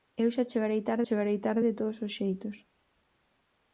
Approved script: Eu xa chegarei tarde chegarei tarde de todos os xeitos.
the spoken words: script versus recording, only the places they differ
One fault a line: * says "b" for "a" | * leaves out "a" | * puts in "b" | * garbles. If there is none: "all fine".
all fine